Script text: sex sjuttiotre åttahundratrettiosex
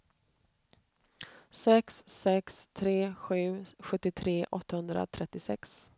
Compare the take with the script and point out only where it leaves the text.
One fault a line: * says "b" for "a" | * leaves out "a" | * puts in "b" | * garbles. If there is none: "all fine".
* puts in "sex tre sju"